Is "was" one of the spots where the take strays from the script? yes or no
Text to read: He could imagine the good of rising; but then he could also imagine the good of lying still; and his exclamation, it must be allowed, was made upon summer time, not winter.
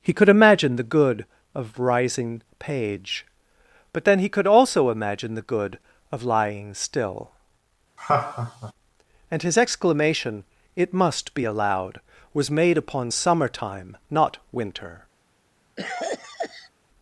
no